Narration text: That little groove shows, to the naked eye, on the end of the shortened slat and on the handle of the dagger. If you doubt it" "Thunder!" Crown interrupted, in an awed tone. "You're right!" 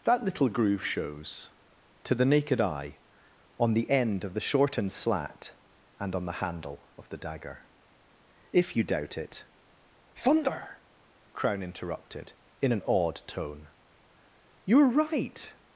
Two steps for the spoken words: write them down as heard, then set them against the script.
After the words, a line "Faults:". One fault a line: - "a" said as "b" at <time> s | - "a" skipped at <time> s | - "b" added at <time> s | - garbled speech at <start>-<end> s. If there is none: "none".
That little groove shows, to the naked eye, on the end of the shortened slat and on the handle of the dagger. If you doubt it" "Thunder!" Crown interrupted, in an awed tone. "You're right!"
Faults:
none